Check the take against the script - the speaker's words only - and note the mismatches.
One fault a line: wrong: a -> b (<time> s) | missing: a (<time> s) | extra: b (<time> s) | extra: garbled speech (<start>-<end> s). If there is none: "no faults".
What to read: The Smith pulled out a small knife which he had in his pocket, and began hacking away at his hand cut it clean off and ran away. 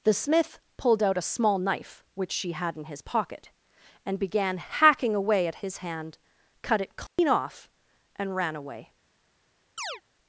wrong: he -> she (2.3 s)